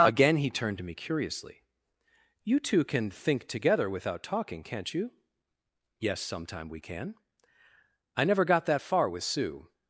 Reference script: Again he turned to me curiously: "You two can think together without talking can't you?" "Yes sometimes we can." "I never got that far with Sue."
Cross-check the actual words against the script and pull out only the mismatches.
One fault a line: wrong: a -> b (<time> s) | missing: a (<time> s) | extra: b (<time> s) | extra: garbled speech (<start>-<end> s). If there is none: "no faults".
wrong: sometimes -> sometime (6.2 s)